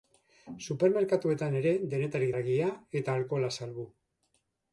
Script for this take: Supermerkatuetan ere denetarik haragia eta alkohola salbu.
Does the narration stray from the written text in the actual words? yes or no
no